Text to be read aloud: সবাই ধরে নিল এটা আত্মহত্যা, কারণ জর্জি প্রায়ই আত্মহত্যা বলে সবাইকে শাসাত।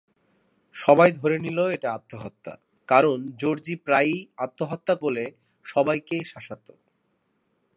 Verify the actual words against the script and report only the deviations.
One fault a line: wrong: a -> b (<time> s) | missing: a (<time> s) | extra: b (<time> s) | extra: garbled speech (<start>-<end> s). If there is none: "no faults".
no faults